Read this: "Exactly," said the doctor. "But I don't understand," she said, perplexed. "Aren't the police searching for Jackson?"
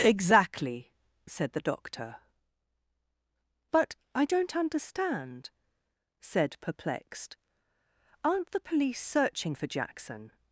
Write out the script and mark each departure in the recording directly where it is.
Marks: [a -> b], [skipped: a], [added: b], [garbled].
"Exactly," said the doctor. "But I don't understand," [skipped: she] said, perplexed. "Aren't the police searching for Jackson?"